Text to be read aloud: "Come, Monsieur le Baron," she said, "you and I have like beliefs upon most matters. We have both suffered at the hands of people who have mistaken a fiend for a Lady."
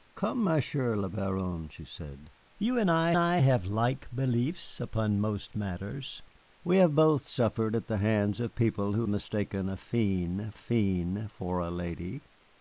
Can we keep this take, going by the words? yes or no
no